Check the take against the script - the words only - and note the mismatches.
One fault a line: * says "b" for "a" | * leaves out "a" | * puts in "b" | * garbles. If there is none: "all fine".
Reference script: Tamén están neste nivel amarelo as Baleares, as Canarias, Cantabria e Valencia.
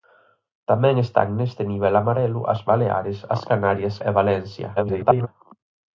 * leaves out "Cantabria"
* garbles